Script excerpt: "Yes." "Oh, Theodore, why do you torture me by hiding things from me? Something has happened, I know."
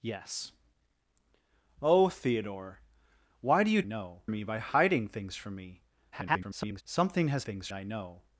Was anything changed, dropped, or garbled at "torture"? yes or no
yes